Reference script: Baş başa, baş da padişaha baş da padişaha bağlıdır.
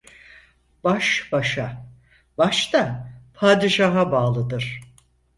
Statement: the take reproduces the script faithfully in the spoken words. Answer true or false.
false